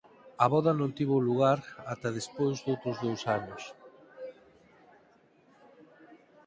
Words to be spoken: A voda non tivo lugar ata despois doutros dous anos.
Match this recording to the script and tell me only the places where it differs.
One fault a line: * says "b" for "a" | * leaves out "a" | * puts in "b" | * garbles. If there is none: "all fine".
all fine